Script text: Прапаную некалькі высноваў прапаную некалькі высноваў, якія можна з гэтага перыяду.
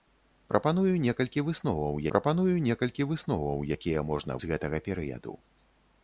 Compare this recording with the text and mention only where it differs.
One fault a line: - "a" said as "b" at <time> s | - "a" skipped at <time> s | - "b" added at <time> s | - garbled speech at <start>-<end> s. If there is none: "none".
none